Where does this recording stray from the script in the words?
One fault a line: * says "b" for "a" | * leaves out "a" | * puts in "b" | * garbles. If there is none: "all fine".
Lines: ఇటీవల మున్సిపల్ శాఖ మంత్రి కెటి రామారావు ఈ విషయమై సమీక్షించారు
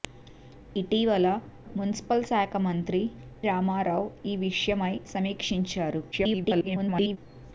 * leaves out "కెటి"
* garbles